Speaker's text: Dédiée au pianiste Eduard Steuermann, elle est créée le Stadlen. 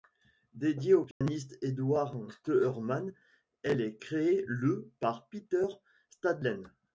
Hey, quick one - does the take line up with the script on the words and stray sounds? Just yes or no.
no